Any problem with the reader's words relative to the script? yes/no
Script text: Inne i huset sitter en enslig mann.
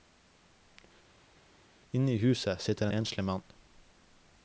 yes